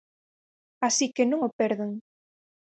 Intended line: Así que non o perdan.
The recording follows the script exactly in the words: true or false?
true